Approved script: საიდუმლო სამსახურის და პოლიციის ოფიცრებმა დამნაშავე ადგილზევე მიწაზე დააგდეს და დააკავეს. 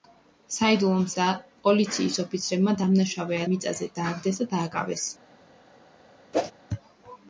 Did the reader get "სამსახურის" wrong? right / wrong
wrong